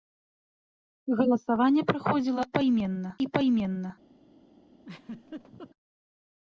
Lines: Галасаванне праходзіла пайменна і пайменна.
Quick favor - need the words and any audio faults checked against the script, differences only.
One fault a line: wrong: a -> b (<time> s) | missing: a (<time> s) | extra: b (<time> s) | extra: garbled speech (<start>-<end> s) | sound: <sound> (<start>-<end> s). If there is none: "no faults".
sound: laugh (4.8-5.7 s)